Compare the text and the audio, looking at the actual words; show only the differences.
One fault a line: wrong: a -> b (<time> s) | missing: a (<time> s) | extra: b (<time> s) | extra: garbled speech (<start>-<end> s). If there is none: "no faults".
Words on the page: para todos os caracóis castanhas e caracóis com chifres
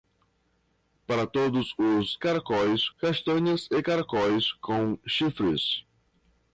no faults